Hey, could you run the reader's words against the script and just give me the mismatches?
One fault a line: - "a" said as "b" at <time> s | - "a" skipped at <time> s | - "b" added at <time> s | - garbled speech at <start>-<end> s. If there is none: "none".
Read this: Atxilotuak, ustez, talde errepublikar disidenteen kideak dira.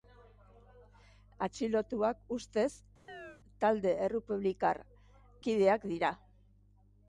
- "disidenteen" skipped at 4.8 s